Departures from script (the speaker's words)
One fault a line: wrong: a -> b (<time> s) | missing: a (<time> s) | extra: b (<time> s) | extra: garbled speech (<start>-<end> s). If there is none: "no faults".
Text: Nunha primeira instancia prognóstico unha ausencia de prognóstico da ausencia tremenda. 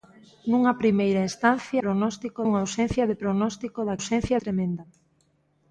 no faults